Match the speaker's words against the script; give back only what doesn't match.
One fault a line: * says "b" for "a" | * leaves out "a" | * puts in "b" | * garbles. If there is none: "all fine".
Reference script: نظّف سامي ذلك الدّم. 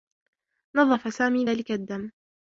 all fine